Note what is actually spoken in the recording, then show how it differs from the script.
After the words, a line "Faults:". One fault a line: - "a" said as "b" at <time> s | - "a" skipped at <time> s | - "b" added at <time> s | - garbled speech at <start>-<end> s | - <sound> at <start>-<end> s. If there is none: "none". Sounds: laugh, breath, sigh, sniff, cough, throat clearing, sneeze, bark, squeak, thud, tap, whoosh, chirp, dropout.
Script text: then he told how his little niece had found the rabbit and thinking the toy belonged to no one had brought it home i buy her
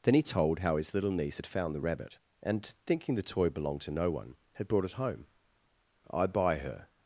then he told how his little niece had found the rabbit and thinking the toy belonged to no one had brought it home i buy her
Faults:
none